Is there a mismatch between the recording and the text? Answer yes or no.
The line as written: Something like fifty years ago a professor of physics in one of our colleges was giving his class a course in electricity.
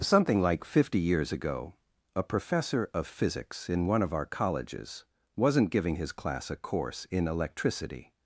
yes